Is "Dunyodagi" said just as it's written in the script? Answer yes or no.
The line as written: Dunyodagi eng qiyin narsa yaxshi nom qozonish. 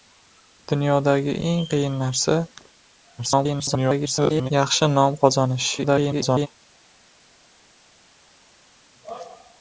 yes